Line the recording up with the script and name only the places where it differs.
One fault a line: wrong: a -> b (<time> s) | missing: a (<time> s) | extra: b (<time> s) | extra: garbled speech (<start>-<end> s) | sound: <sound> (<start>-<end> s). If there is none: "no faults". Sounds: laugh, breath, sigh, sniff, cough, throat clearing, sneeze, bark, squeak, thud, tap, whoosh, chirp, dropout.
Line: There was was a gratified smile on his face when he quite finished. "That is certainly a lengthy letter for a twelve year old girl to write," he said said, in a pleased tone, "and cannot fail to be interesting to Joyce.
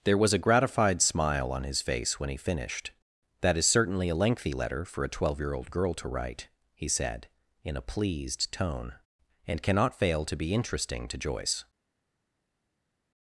missing: was (0.3 s)
missing: quite (2.4 s)
missing: said (7.3 s)